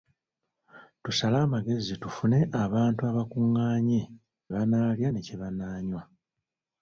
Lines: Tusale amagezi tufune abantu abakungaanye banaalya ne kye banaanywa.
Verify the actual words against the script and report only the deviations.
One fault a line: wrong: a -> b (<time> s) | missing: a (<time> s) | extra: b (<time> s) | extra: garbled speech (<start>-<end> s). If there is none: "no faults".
no faults